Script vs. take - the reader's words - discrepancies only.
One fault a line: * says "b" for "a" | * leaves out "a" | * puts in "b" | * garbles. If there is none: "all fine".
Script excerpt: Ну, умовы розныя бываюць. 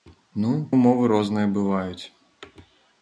all fine